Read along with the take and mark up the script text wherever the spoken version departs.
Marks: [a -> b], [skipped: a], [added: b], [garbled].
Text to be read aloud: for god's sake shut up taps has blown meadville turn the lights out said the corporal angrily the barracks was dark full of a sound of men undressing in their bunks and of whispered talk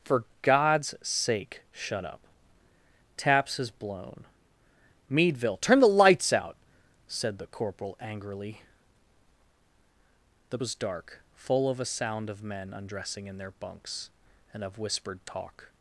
for god's sake shut up taps has blown meadville turn the lights out said the corporal angrily the [skipped: barracks] was dark full of a sound of men undressing in their bunks and of whispered talk